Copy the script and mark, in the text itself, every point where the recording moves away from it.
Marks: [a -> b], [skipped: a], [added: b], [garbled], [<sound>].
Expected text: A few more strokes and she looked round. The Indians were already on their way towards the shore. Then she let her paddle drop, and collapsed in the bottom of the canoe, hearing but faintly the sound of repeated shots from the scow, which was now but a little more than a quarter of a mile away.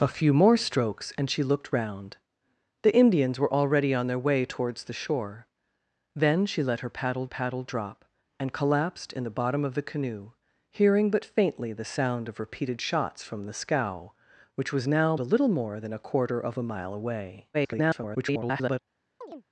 A few more strokes and she looked round. The Indians were already on their way towards the shore. Then she let her paddle [added: paddle] drop, and collapsed in the bottom of the canoe, hearing but faintly the sound of repeated shots from the scow, which was now [skipped: but] a little more than a quarter of a mile away. [garbled] [chirp]